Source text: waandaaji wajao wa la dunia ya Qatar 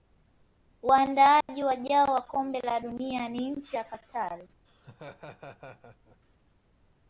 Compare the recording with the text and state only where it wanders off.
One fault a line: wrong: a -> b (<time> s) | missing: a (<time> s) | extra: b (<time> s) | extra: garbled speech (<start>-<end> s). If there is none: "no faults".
extra: kombe (2.2 s)
extra: ni nchi (3.3 s)